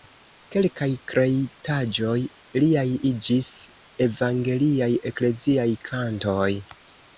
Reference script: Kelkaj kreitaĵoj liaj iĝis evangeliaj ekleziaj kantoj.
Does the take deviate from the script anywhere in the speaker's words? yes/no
no